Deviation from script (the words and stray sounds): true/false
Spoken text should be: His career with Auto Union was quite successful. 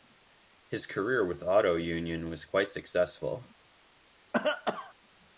true